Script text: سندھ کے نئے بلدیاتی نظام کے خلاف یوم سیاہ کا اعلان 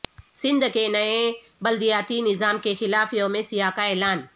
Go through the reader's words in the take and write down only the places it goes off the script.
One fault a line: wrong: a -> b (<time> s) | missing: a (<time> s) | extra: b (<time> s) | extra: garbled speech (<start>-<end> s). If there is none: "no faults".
no faults